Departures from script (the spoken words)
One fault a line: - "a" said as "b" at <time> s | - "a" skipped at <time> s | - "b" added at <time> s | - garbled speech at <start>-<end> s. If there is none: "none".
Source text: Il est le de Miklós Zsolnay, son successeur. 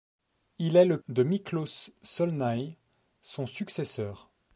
none